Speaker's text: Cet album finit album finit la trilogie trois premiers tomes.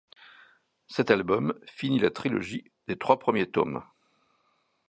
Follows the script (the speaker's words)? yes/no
no